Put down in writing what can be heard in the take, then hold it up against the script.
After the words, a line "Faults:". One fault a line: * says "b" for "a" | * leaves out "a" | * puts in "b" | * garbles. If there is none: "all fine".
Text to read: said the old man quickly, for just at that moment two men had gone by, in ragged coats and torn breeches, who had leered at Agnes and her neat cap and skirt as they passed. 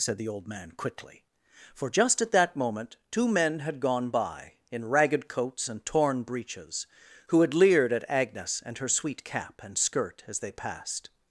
said the old man quickly, for just at that moment two men had gone by, in ragged coats and torn breeches, who had leered at Agnes and her sweet cap and skirt as they passed.
Faults:
* says "sweet" for "neat"